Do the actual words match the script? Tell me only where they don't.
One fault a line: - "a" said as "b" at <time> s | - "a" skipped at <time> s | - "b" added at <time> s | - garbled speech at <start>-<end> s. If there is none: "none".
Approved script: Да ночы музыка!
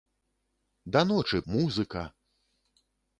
none